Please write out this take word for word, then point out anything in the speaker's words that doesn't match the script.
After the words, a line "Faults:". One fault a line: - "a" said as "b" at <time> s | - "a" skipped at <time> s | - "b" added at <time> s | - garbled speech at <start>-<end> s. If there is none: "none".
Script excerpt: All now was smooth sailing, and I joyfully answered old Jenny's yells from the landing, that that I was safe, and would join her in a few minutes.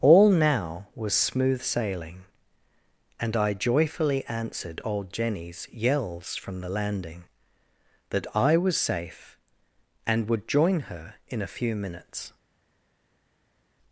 All now was smooth sailing, and I joyfully answered old Jenny's yells from the landing, that I was safe, and would join her in a few minutes.
Faults:
- "that" skipped at 8.2 s